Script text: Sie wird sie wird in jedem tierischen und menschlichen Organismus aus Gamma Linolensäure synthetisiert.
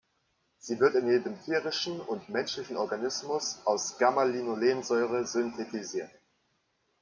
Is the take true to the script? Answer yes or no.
no